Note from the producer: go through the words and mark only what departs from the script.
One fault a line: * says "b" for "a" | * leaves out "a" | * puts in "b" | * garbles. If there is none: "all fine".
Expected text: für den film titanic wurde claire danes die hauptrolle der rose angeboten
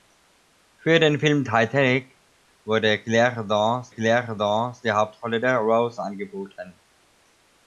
* puts in "claire danes"